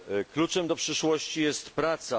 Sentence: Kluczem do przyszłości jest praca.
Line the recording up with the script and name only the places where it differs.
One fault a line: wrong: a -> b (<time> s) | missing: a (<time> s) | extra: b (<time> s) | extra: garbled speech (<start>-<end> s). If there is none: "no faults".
no faults